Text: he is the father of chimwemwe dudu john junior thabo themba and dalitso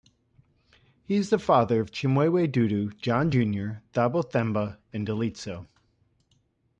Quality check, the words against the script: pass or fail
pass